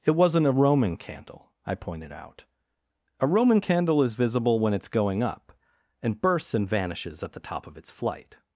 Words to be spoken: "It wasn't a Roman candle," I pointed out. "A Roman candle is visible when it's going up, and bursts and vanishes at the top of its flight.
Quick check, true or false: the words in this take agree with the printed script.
true